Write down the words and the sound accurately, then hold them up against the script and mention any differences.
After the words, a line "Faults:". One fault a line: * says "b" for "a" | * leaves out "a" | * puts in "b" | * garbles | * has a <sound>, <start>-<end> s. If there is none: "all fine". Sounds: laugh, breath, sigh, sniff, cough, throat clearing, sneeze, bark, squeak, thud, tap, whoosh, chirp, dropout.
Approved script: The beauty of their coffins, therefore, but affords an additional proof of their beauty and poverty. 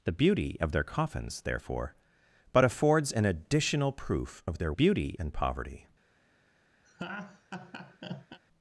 The beauty of their coffins, therefore, but affords an additional proof of their beauty and poverty.
Faults:
* has a laugh, 6.9-8.4 s